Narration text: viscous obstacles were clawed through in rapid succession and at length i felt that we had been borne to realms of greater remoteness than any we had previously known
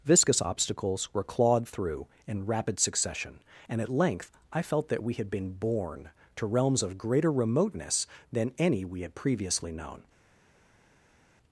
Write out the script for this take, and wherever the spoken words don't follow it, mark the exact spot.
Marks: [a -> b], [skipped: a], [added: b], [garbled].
viscous obstacles were clawed through in rapid succession and at length i felt that we had been borne to realms of greater remoteness than any we had previously known